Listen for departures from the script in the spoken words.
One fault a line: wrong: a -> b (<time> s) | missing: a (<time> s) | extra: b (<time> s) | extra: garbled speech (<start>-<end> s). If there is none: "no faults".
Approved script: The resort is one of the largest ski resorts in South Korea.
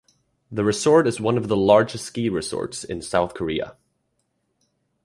no faults